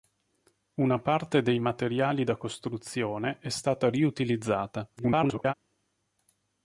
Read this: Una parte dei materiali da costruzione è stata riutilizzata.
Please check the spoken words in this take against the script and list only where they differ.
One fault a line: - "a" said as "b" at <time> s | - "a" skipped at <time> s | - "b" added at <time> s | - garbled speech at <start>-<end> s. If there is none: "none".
- garbled speech at 5.0-5.5 s